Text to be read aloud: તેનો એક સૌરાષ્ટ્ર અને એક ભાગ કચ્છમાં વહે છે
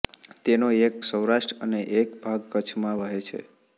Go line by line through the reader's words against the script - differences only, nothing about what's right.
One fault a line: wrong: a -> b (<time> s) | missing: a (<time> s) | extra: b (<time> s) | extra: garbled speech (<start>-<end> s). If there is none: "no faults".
no faults